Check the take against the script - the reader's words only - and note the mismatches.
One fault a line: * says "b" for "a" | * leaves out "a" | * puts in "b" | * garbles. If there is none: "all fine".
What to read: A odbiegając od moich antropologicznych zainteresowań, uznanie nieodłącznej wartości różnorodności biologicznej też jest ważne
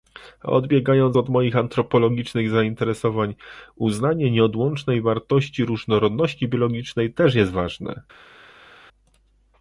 all fine